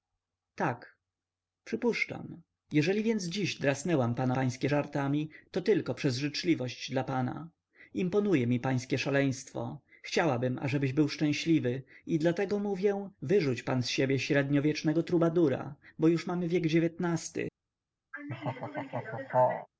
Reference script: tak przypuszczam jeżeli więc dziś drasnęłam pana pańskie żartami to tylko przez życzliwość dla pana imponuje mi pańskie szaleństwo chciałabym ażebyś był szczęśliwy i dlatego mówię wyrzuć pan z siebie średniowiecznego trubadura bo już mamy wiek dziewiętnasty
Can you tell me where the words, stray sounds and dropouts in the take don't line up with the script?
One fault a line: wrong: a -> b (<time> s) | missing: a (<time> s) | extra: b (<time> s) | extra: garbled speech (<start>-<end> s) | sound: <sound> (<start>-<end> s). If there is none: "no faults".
sound: laugh (18.1-19.7 s)